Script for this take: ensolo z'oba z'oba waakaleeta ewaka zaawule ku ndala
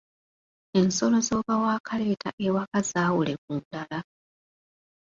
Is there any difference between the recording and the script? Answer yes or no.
yes